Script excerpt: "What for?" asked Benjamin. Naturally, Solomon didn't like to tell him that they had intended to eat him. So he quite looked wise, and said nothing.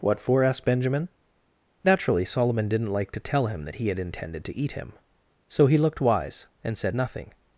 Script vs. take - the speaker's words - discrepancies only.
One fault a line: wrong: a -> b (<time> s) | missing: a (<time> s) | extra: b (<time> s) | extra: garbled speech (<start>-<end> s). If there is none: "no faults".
wrong: they -> he (3.8 s)
missing: quite (5.8 s)